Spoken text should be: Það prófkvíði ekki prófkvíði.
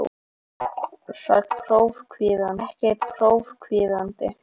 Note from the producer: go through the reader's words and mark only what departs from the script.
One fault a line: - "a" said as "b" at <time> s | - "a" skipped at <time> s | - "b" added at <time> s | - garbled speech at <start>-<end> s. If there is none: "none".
none